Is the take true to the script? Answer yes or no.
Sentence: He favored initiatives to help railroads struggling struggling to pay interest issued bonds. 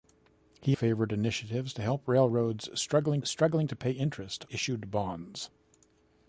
yes